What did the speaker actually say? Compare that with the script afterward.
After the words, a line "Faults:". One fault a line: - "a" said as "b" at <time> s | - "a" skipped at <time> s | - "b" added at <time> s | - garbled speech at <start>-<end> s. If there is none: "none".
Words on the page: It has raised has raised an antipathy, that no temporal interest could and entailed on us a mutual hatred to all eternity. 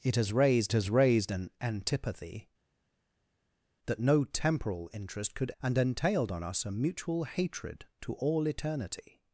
It has raised has raised an antipathy, that no temporal interest could and entailed on us a mutual hatred to all eternity.
Faults:
none